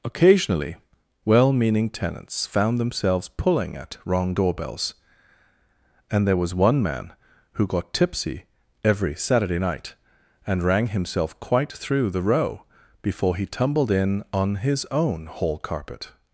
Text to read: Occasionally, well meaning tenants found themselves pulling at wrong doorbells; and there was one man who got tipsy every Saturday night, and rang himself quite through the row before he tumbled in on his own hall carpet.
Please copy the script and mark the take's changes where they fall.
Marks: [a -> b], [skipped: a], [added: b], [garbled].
Occasionally, well meaning tenants found themselves pulling at wrong doorbells; and there was one man who got tipsy every Saturday night, and rang himself quite through the row before he tumbled in on his own hall carpet.